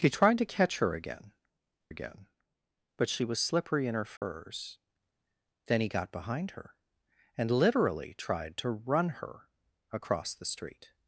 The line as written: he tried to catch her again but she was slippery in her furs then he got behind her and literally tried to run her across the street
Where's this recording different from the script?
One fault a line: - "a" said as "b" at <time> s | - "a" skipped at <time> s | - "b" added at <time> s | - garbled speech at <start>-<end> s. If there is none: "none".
- "again" added at 1.9 s